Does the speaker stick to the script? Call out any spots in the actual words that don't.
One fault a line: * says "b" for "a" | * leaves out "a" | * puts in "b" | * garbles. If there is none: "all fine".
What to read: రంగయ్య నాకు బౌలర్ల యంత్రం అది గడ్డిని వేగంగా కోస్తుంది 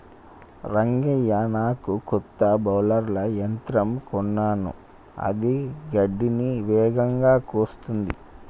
* puts in "కొత్త"
* puts in "కొన్నాను"